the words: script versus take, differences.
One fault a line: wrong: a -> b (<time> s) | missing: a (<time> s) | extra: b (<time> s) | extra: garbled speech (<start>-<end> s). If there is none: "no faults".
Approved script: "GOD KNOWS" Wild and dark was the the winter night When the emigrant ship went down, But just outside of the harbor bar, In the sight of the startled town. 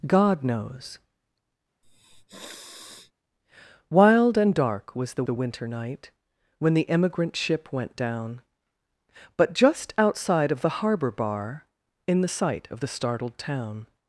no faults